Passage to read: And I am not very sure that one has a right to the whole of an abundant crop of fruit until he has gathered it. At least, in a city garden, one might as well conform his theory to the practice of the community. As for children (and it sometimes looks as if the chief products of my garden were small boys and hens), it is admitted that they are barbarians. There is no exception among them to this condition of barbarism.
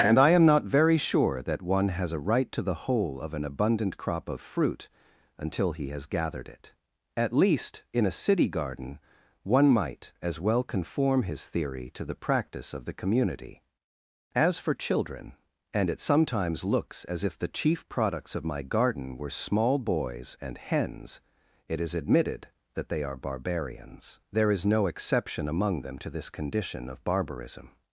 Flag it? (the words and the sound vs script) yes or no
no